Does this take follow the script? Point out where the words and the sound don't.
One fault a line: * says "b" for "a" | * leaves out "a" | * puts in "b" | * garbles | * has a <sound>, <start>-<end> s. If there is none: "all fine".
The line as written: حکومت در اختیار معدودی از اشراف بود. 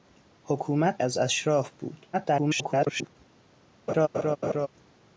* leaves out "در اختیار معدودی"
* garbles
* has a laugh, 3.9-4.7 s